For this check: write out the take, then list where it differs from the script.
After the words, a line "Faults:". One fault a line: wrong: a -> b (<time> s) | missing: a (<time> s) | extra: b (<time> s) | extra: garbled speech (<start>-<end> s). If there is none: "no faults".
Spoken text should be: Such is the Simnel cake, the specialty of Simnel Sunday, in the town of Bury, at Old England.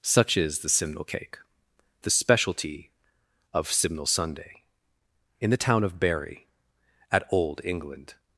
Such is the Simnel cake, the specialty of Simnel Sunday, in the town of Bury, at Old England.
Faults:
no faults